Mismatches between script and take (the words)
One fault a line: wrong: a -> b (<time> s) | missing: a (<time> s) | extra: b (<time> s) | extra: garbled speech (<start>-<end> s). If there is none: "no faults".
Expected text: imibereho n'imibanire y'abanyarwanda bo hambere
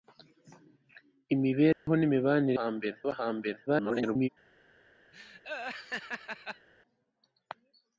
wrong: y'abanyarwanda -> hambere (2.6 s)
extra: garbled speech (3.7-4.3 s)